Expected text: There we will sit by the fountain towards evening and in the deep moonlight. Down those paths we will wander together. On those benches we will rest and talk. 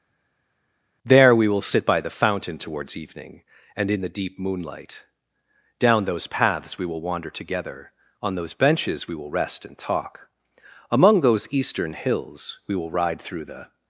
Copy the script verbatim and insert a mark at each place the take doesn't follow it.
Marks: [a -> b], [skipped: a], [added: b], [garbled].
There we will sit by the fountain towards evening and in the deep moonlight. Down those paths we will wander together. On those benches we will rest and talk. [added: Among those eastern hills we will ride through the]